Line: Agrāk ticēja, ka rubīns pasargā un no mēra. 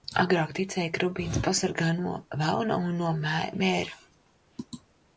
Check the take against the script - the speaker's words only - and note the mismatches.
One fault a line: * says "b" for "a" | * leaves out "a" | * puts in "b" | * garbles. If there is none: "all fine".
* puts in "no velna"